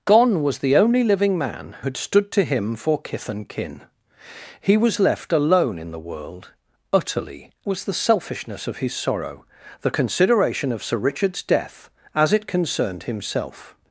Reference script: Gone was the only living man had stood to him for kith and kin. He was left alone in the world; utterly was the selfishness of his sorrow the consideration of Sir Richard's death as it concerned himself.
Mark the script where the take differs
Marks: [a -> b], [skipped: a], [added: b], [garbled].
Gone was the only living man had stood to him for kith and kin. He was left alone in the world; utterly was the selfishness of his sorrow the consideration of Sir Richard's death as it concerned himself.